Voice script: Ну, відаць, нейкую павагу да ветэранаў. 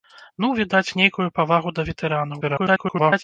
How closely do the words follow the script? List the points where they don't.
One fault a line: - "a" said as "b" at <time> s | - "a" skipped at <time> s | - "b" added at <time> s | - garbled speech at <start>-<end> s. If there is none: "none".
- garbled speech at 2.4-3.2 s